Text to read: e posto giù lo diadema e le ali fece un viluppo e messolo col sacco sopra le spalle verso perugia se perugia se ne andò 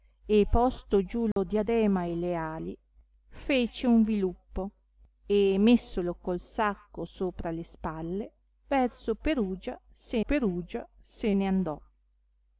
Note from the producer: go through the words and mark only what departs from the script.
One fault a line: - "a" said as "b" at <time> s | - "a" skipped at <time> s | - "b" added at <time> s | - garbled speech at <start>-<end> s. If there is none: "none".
none